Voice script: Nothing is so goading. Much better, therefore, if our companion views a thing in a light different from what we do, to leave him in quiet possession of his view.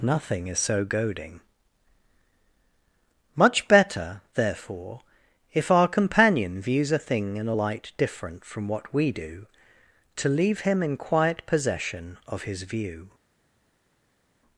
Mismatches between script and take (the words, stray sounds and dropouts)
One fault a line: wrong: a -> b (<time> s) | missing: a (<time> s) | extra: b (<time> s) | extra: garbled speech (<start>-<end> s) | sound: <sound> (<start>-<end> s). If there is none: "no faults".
no faults